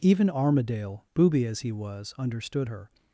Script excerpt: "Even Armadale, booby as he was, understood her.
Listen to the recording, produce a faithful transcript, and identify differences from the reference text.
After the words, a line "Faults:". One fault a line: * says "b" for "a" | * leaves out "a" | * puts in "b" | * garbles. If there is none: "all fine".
"Even Armadale, booby as he was, understood her.
Faults:
all fine